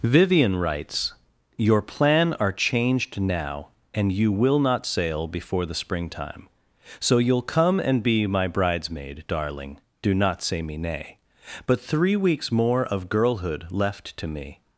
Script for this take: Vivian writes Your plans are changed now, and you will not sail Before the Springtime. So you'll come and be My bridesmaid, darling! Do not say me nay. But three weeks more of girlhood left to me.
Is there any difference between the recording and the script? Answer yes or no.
yes